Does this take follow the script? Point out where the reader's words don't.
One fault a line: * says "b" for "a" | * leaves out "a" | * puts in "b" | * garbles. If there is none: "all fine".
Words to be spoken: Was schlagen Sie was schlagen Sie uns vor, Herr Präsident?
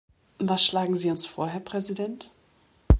* leaves out "was schlagen Sie"